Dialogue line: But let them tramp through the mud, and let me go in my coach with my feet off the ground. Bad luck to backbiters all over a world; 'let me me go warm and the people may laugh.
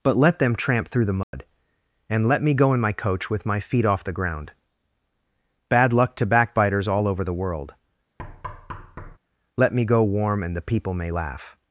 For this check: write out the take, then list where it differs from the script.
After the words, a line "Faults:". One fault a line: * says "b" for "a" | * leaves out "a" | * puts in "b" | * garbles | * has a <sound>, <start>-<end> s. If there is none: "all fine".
But let them tramp through the mud, and let me go in my coach with my feet off the ground. Bad luck to backbiters all over the world; 'let me go warm and the people may laugh.
Faults:
* has a dropout, 1.2-1.3 s
* says "the" for "a"
* has a thud, 8.2-9.2 s
* leaves out "me"